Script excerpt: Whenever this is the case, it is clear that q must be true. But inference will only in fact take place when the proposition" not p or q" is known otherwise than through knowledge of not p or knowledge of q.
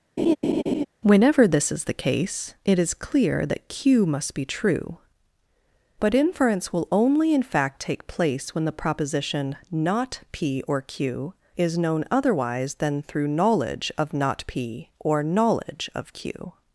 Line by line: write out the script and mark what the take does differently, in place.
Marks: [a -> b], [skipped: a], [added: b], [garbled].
Whenever this is the case, it is clear that q must be true. But inference will only in fact take place when the proposition" not p or q" is known otherwise than through knowledge of not p or knowledge of q.